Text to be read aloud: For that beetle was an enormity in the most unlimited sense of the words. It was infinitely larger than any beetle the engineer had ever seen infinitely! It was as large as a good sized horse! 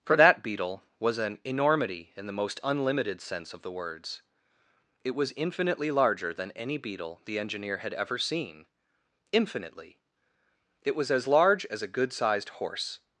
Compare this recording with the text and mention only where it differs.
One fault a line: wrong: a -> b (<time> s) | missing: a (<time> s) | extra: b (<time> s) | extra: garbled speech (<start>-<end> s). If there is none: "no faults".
no faults